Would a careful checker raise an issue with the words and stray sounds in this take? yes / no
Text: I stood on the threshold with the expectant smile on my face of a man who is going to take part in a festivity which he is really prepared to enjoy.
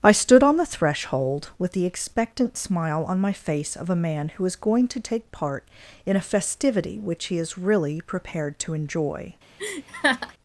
yes